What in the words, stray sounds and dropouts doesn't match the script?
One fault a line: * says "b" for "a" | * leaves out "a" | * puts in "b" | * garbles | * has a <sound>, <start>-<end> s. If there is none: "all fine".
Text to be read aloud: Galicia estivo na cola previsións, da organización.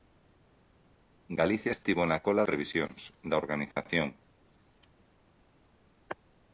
* has a dropout, 3.7-3.8 s